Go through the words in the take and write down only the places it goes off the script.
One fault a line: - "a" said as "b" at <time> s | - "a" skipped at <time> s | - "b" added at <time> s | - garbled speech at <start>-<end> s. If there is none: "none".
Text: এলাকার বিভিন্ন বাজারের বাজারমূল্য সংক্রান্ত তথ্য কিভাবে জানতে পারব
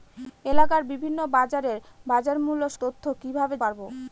- "সংক্রান্ত" skipped at 2.6 s
- "জানতে" skipped at 3.5 s